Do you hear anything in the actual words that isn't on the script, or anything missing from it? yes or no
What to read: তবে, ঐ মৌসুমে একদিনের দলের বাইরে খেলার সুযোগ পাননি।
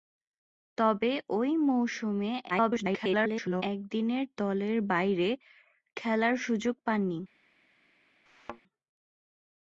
yes